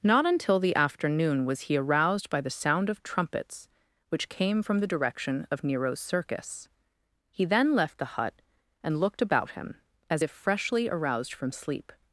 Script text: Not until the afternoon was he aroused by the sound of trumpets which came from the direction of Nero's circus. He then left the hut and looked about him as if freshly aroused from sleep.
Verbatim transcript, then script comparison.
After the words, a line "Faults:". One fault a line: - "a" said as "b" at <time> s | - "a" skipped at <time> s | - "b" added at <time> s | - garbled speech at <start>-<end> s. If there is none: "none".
Not until the afternoon was he aroused by the sound of trumpets which came from the direction of Nero's circus. He then left the hut and looked about him as if freshly aroused from sleep.
Faults:
none